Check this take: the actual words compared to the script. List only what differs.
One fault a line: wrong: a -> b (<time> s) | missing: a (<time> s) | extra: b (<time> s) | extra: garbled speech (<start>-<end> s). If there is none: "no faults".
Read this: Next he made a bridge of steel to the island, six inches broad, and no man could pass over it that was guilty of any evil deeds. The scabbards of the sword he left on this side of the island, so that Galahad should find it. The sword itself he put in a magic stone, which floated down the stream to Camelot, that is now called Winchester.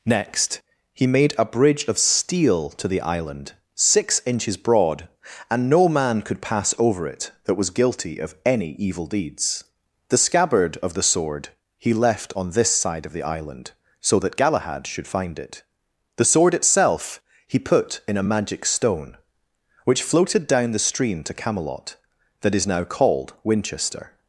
wrong: scabbards -> scabbard (10.2 s)